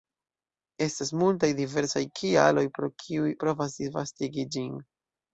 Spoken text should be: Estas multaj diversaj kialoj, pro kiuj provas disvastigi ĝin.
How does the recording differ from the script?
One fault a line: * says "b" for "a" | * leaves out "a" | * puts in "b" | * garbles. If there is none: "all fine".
all fine